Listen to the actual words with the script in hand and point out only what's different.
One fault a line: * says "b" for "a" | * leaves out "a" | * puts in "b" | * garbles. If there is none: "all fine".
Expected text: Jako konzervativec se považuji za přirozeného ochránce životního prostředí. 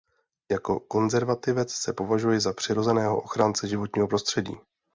all fine